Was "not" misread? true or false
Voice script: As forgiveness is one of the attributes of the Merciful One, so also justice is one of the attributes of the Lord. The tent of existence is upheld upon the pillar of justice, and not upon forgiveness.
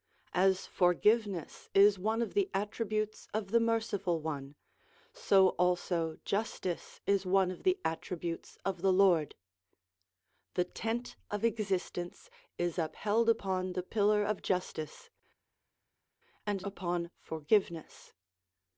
true